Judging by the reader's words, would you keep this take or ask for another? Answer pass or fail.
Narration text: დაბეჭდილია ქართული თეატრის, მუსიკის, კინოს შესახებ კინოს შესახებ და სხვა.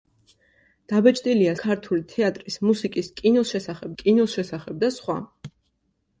pass